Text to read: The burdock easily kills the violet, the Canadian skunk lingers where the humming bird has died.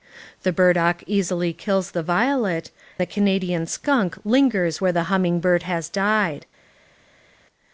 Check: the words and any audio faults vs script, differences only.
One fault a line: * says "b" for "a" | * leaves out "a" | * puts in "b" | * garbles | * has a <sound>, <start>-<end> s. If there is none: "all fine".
all fine